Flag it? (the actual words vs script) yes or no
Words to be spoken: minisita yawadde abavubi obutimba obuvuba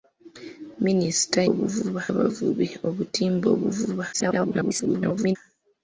yes